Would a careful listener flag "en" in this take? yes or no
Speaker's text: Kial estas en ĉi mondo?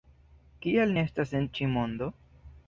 no